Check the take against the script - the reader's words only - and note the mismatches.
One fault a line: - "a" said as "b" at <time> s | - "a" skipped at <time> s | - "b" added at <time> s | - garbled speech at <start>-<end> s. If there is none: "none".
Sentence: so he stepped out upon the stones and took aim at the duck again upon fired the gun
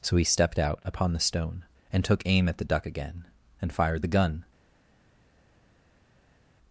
- "stones" said as "stone" at 1.2 s
- "upon" said as "and" at 3.6 s